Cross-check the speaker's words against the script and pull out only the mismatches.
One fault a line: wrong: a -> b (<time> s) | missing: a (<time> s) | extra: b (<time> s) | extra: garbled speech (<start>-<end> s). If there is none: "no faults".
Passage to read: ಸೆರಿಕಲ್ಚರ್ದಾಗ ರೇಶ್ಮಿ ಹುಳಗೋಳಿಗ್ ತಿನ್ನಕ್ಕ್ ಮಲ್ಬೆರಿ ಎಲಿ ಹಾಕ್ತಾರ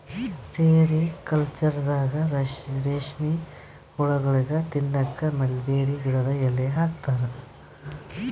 extra: ಗಿಡದ್ (6.1 s)